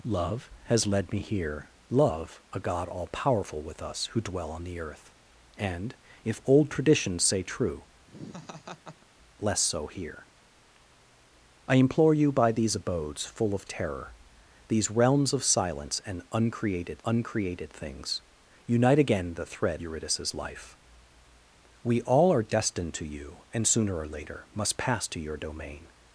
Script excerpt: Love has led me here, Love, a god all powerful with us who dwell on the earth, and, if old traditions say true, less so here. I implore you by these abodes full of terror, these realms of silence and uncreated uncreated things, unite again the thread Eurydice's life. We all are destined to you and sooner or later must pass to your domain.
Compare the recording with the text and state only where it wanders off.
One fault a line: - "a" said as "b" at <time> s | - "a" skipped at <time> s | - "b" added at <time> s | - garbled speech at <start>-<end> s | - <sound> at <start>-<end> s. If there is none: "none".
- laugh at 8.1-9.1 s